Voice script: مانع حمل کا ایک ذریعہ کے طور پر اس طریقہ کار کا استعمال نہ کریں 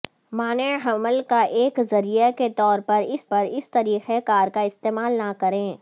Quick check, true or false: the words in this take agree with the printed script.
false